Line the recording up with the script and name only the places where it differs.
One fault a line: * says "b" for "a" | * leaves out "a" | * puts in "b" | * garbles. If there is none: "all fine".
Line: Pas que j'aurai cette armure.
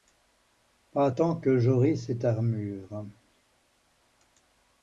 * puts in "tant"